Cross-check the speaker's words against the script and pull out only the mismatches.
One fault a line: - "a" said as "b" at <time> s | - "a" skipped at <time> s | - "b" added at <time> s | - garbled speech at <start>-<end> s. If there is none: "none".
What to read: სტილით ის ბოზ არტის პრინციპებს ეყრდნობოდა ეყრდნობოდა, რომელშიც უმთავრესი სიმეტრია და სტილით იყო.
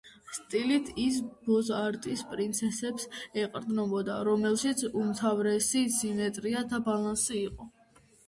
- "ეყრდნობოდა" skipped at 4.2 s
- "სტილით" said as "ბალანსი" at 6.9 s